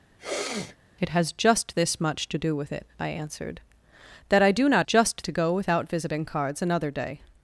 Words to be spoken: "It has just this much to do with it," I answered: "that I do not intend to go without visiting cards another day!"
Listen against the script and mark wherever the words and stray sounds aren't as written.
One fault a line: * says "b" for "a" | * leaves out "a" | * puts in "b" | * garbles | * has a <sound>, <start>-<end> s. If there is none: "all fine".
* has a sneeze, 0.2-0.8 s
* says "just" for "intend"